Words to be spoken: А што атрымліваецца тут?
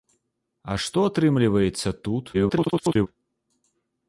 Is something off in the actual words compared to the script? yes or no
yes